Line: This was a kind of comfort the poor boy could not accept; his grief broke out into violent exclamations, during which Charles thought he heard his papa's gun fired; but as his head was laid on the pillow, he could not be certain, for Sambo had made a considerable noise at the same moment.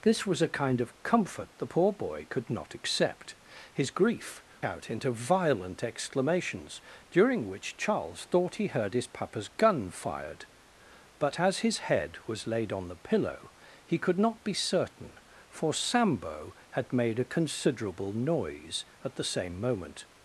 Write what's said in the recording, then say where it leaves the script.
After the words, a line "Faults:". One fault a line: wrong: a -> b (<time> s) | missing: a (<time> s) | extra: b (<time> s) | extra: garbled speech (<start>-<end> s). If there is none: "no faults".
This was a kind of comfort the poor boy could not accept; his grief out into violent exclamations, during which Charles thought he heard his papa's gun fired; but as his head was laid on the pillow, he could not be certain, for Sambo had made a considerable noise at the same moment.
Faults:
missing: broke (4.4 s)